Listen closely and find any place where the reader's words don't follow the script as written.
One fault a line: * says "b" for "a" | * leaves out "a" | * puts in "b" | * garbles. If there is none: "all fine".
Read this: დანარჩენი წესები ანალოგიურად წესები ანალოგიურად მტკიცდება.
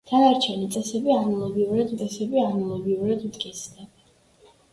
all fine